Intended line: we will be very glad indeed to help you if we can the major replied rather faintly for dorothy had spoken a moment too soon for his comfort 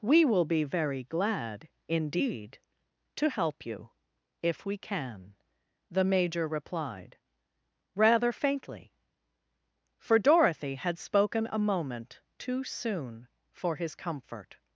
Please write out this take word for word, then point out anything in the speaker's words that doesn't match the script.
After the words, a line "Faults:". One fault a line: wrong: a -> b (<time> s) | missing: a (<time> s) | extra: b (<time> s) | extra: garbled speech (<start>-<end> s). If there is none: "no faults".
we will be very glad indeed to help you if we can the major replied rather faintly for dorothy had spoken a moment too soon for his comfort
Faults:
no faults